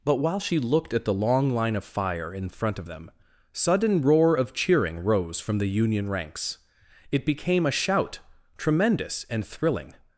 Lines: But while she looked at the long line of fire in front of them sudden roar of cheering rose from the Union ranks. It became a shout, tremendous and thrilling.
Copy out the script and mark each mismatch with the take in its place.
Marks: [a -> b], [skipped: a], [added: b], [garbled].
But while she looked at the long line of fire in front of them sudden roar of cheering rose from the Union ranks. It became a shout, tremendous and thrilling.